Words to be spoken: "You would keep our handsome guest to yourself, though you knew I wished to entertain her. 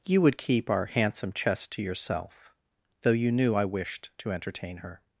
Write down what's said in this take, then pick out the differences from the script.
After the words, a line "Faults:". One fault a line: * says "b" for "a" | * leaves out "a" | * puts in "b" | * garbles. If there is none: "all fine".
"You would keep our handsome chest to yourself, though you knew I wished to entertain her.
Faults:
* says "chest" for "guest"